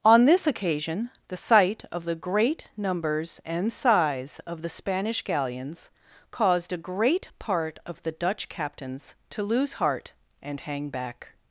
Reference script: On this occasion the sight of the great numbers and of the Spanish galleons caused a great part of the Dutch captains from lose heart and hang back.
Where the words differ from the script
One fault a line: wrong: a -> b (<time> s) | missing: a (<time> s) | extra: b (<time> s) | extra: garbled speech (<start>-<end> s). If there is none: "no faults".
extra: size (3.7 s)
wrong: from -> to (9.3 s)